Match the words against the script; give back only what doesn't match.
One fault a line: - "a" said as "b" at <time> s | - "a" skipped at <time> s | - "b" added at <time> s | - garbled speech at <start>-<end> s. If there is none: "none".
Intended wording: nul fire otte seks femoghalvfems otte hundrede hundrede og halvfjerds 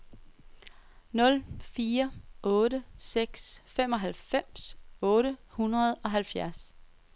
- "hundrede" skipped at 5.9 s